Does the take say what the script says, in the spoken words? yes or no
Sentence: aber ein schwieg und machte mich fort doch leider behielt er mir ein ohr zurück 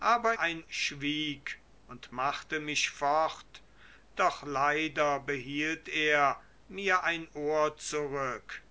yes